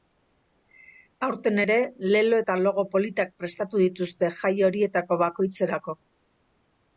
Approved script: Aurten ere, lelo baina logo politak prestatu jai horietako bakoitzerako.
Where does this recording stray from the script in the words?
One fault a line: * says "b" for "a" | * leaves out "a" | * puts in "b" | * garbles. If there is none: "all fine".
* says "eta" for "baina"
* puts in "dituzte"